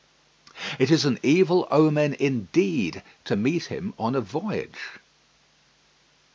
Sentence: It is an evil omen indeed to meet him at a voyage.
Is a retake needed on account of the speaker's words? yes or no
yes